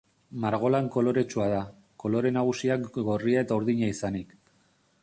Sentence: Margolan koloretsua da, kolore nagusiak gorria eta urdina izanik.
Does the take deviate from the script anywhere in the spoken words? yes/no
no